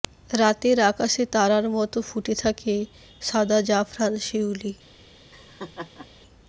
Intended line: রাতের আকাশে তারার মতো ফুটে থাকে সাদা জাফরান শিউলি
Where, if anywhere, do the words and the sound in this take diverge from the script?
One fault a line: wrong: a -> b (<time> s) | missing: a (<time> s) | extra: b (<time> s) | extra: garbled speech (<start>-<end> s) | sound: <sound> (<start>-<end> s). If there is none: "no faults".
sound: laugh (5.3-6.1 s)